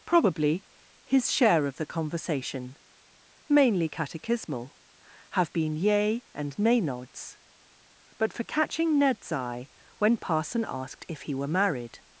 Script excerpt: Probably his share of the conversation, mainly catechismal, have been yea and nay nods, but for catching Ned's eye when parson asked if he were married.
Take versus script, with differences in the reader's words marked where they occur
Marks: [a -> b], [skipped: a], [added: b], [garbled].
Probably his share of the conversation, mainly catechismal, have been yea and nay nods, but for catching Ned's eye when parson asked if he were married.